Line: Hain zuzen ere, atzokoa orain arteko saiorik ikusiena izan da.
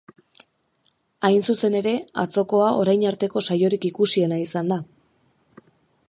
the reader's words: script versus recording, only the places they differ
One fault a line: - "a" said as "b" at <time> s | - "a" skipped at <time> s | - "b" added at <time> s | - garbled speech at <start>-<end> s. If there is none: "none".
none